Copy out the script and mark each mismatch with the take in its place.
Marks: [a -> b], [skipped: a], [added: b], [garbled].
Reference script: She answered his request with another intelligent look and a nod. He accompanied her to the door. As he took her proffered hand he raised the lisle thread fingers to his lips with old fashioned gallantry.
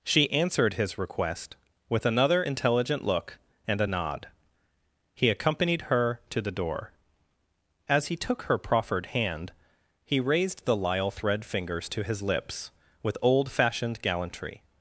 She answered his request with another intelligent look and a nod. He accompanied her to the door. As he took her proffered hand he raised the lisle thread fingers to his lips with old fashioned gallantry.